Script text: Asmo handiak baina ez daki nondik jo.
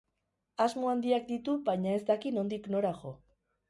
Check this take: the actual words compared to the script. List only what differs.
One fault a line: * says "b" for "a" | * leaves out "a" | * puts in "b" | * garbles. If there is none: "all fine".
* puts in "ditu"
* puts in "nora"